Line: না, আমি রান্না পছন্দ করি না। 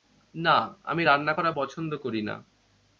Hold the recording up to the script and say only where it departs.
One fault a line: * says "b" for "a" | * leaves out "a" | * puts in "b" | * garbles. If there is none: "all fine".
* puts in "করা"